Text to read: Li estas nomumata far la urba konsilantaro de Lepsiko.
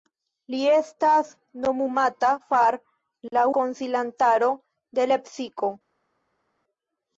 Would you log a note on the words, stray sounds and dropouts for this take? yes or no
yes